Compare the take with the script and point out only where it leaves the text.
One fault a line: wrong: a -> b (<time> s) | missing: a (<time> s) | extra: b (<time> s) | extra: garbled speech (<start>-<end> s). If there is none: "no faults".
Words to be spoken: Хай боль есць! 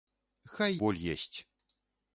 no faults